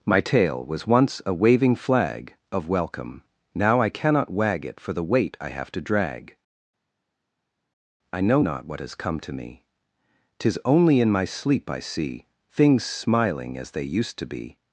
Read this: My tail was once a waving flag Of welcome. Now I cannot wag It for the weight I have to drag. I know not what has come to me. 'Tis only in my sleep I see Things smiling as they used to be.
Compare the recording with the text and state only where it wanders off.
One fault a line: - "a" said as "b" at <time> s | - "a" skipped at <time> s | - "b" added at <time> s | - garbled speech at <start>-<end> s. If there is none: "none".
none